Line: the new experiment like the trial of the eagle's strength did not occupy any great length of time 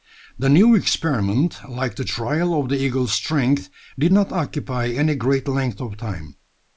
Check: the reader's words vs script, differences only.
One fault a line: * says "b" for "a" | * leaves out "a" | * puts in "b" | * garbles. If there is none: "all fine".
all fine